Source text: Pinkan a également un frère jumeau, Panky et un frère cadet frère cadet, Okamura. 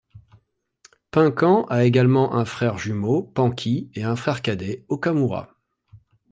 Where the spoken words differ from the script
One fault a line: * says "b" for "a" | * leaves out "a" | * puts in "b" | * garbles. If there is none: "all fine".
* leaves out "frère cadet"